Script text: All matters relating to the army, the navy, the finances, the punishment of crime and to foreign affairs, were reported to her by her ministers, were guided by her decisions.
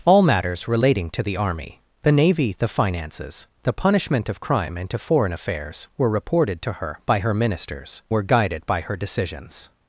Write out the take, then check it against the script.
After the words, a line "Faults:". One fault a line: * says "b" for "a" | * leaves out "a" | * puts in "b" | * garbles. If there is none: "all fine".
All matters relating to the army, the navy, the finances, the punishment of crime and to foreign affairs, were reported to her by her ministers, were guided by her decisions.
Faults:
all fine